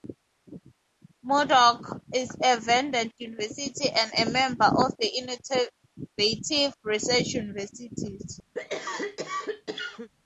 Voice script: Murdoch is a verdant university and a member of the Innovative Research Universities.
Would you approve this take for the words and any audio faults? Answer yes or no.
no